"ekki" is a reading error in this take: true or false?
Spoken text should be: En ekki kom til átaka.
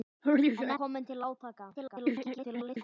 true